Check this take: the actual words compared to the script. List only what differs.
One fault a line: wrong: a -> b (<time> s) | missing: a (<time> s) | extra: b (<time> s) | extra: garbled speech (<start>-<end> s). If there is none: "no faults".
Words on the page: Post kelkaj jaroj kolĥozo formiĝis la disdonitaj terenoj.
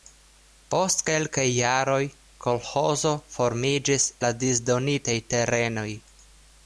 no faults